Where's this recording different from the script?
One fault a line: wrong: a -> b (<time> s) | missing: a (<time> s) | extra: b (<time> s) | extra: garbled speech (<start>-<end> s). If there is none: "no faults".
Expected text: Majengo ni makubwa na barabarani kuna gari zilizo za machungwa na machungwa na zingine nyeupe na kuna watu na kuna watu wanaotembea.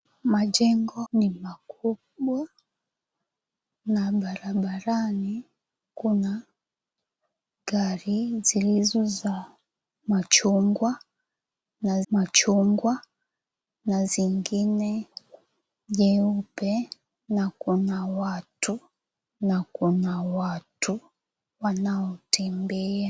no faults